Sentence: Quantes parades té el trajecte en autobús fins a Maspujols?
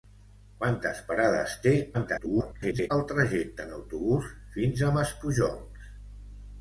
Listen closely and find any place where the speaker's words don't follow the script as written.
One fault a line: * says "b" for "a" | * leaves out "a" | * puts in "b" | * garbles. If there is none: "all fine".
* garbles